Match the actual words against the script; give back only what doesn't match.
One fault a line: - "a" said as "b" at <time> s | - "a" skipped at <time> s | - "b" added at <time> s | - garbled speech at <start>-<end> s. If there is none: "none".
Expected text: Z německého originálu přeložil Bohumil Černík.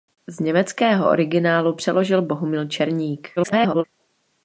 - garbled speech at 3.4-3.8 s